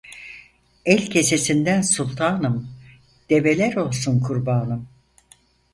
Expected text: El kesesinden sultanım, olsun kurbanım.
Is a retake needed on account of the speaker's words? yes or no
yes